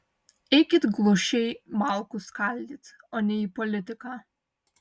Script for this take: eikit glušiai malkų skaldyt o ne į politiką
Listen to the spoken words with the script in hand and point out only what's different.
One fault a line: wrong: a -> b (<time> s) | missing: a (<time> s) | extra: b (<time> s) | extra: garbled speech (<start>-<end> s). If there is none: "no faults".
no faults